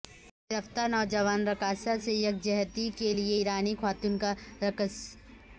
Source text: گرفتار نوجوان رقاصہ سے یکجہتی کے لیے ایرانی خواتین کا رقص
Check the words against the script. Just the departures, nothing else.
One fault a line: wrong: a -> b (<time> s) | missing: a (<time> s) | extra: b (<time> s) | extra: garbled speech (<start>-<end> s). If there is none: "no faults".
no faults